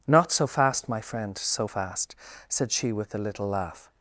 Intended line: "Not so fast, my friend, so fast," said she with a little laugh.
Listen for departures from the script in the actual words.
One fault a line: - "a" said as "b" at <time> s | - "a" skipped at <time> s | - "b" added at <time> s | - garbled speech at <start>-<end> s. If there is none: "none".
none